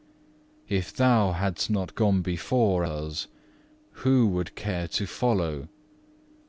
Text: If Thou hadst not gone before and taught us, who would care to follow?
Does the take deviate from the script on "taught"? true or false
true